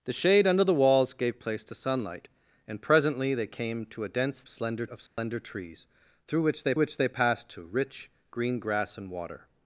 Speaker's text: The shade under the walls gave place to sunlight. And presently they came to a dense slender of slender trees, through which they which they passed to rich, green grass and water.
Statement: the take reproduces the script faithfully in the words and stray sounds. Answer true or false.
false